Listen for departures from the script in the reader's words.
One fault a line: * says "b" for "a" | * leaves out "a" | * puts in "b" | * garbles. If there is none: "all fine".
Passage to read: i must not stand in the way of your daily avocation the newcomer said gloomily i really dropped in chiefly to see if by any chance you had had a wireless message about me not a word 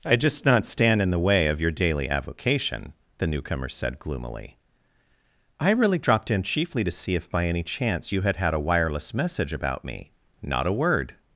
* says "just" for "must"